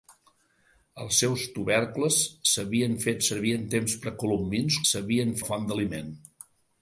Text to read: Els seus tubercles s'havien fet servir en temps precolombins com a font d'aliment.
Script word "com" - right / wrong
wrong